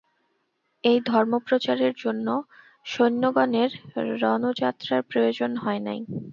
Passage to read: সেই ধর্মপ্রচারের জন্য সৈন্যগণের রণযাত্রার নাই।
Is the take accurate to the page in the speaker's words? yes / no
no